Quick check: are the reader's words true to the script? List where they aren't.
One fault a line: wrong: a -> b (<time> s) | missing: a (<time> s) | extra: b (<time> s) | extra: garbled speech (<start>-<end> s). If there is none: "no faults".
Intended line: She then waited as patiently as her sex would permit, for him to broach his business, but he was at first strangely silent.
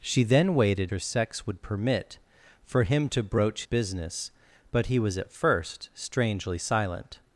missing: as patiently as (0.9 s)
missing: his (3.6 s)